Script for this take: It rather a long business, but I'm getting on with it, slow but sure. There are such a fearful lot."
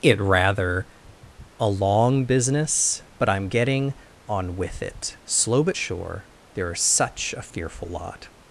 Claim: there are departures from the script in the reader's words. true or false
false